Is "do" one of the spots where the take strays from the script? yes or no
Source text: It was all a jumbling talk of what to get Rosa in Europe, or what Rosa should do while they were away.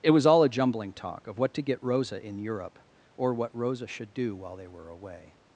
no